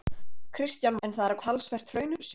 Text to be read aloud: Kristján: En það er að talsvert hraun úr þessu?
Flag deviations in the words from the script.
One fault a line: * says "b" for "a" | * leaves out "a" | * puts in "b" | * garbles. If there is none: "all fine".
all fine